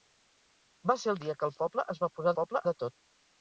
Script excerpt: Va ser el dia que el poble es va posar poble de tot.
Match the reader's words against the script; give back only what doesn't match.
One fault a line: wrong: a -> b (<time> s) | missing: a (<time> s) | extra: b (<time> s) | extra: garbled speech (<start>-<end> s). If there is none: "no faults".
no faults